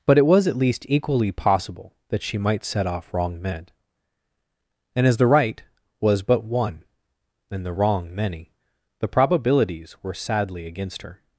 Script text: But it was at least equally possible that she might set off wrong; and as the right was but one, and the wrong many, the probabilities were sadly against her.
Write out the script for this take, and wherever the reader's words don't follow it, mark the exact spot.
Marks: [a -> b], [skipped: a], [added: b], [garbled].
But it was at least equally possible that she might set off wrong; [added: men] and as the right was but one, and the wrong many, the probabilities were sadly against her.